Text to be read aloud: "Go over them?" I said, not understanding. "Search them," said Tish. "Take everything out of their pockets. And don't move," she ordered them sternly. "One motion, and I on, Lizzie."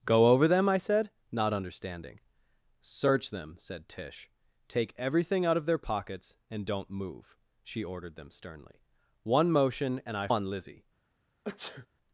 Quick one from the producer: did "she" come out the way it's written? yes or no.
yes